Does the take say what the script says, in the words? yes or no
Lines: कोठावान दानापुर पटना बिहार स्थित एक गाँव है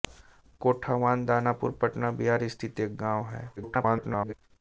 no